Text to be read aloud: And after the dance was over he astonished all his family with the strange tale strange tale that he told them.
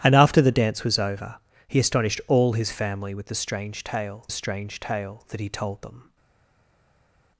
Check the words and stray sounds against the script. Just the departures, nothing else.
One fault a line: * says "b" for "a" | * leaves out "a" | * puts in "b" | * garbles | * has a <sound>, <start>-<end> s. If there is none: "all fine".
all fine